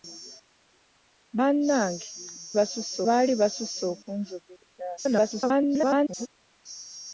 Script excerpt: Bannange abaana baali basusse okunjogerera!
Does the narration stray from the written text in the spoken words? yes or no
yes